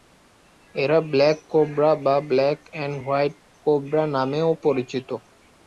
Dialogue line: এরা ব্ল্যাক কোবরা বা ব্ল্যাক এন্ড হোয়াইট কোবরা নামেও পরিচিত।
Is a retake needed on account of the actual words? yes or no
no